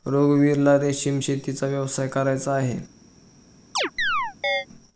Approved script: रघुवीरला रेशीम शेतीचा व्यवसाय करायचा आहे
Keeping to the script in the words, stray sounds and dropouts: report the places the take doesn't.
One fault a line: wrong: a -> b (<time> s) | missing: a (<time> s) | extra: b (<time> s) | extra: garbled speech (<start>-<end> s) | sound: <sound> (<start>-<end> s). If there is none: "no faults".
sound: chirp (3.8-4.7 s)